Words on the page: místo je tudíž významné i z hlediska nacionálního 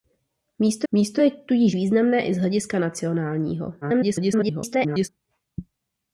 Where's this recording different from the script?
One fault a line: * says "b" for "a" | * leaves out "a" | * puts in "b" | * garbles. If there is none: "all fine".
* puts in "místo"
* garbles